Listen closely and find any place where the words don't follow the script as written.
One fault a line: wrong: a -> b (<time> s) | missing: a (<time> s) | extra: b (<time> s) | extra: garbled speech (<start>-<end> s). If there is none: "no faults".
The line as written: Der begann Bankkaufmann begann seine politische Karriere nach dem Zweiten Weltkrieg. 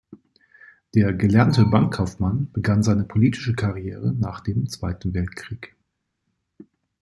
wrong: begann -> gelernte (1.1 s)